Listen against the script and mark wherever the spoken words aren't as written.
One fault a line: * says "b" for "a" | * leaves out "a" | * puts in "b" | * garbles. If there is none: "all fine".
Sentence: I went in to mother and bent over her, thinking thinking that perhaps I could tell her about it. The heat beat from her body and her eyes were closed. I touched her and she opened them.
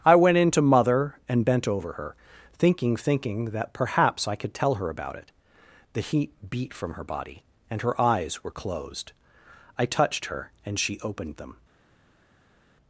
all fine